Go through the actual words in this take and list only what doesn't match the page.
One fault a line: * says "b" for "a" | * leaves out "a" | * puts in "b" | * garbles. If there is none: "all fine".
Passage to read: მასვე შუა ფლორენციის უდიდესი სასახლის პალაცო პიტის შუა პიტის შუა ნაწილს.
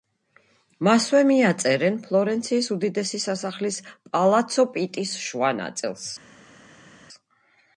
* says "მიაწერენ" for "შუა"
* leaves out "პიტის შუა"